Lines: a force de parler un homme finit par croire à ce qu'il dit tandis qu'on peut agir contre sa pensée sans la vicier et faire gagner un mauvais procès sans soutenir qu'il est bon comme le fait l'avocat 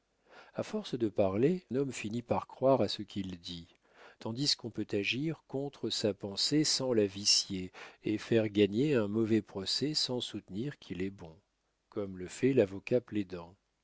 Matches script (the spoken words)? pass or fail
fail